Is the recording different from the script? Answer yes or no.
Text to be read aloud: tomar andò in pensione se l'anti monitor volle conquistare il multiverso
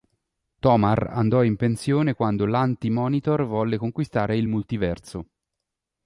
yes